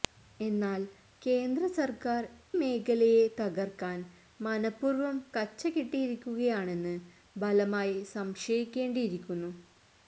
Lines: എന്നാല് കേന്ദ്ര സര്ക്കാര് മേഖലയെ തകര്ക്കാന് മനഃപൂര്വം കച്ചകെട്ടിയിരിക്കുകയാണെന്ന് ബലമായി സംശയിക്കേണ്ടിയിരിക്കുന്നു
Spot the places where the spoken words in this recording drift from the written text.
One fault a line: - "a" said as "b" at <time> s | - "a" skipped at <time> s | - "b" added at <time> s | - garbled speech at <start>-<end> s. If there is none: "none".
none